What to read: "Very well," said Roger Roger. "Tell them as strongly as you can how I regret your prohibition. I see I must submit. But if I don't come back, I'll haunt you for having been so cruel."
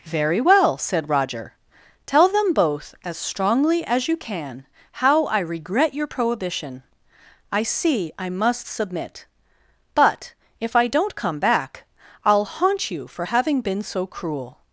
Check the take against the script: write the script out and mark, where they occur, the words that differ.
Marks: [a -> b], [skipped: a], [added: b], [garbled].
"Very well," said Roger [skipped: Roger.] "Tell them [added: both] as strongly as you can how I regret your prohibition. I see I must submit. But if I don't come back, I'll haunt you for having been so cruel."